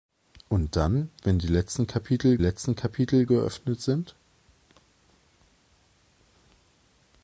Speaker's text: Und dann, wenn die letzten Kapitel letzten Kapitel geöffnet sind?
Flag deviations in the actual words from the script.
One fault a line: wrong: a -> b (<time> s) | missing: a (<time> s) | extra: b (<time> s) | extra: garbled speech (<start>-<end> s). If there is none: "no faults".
no faults